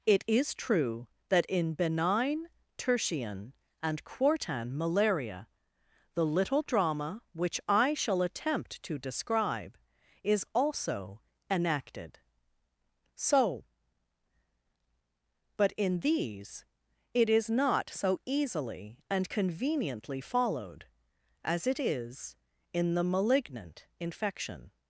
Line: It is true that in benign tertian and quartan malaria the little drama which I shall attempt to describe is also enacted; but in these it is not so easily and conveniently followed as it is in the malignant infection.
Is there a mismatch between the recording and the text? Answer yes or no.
yes